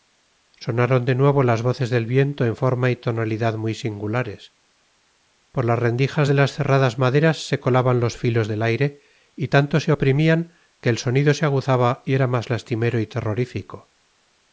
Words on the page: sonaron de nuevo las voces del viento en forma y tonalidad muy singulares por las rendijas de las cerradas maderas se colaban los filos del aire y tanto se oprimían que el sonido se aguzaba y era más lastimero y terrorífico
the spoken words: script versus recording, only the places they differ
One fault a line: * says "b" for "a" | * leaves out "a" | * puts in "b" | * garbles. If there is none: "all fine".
all fine